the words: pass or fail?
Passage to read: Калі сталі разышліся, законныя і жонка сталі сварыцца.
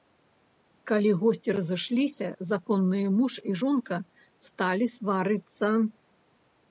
fail